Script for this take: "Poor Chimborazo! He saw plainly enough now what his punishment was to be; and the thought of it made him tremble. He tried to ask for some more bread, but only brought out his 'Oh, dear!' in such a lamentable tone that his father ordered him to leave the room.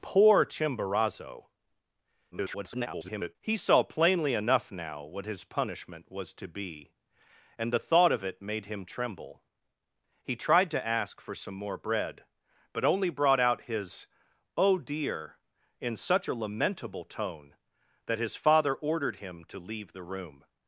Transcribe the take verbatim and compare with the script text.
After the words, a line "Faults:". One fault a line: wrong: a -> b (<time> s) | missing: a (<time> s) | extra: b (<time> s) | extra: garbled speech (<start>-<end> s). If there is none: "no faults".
"Poor Chimborazo! [garbled] He saw plainly enough now what his punishment was to be; and the thought of it made him tremble. He tried to ask for some more bread, but only brought out his 'Oh, dear!' in such a lamentable tone that his father ordered him to leave the room.
Faults:
extra: garbled speech (2.3-3.4 s)